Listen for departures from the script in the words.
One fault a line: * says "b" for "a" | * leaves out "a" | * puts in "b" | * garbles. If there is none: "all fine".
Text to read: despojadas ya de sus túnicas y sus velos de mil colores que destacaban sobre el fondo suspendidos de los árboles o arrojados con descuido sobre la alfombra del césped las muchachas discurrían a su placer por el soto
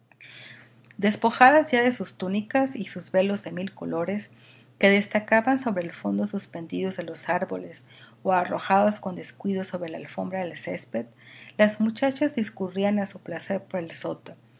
all fine